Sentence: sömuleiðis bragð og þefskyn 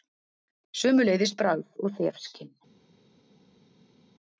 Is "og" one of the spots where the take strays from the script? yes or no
no